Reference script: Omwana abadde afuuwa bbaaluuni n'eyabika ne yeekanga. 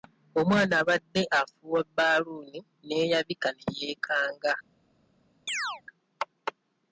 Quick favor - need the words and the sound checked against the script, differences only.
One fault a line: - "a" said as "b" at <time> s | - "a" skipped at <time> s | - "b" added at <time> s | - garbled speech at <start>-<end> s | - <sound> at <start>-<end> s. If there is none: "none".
- chirp at 5.5-5.8 s